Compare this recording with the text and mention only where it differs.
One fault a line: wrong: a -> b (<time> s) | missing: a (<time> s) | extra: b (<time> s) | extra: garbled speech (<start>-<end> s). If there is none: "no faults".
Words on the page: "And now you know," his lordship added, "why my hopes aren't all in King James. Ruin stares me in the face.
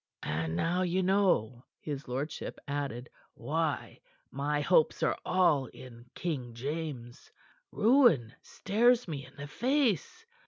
wrong: aren't -> are (5.0 s)